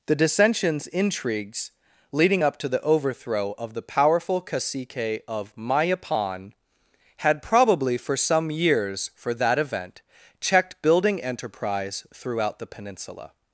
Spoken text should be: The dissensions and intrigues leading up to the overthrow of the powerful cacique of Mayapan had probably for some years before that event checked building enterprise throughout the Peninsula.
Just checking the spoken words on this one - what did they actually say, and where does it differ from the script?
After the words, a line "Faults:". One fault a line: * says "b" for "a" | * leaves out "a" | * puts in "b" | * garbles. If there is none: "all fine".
The dissensions intrigues leading up to the overthrow of the powerful cacique of Mayapan had probably for some years for that event checked building enterprise throughout the Peninsula.
Faults:
* leaves out "and"
* says "for" for "before"